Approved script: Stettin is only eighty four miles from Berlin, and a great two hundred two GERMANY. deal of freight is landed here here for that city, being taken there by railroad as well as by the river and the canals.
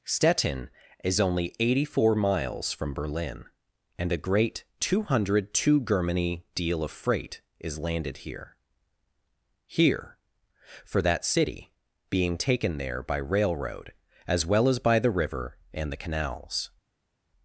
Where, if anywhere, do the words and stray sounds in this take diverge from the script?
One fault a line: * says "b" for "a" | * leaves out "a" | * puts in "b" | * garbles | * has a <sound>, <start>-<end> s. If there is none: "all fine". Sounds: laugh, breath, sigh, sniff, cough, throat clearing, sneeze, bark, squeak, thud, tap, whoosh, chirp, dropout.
all fine